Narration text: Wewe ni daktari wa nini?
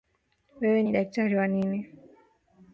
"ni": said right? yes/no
yes